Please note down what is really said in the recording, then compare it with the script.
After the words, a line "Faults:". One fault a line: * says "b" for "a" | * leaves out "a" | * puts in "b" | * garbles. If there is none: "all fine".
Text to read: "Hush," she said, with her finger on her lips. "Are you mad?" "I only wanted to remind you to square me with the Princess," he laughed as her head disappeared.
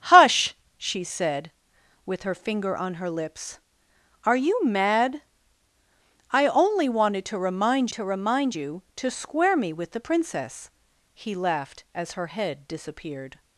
"Hush," she said, with her finger on her lips. "Are you mad?" "I only wanted to remind to remind you to square me with the Princess," he laughed as her head disappeared.
Faults:
* puts in "to remind"